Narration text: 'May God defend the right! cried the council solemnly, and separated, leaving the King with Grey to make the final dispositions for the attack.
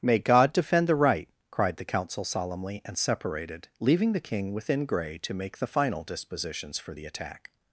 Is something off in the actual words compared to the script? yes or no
yes